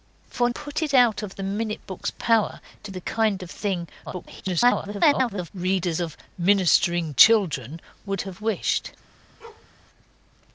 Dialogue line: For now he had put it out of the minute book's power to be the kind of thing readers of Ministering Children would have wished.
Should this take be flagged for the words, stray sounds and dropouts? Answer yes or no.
yes